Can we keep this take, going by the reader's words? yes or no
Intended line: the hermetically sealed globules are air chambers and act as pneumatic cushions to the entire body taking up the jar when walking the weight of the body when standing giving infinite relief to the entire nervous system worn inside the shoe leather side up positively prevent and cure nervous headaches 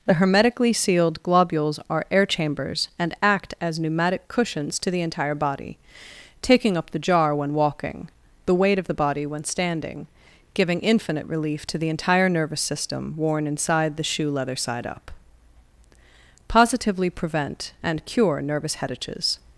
yes